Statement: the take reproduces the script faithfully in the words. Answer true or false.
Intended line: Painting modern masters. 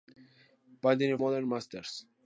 true